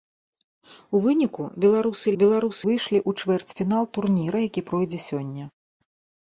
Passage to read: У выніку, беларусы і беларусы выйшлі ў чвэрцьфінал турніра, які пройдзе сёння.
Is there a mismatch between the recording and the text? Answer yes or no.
no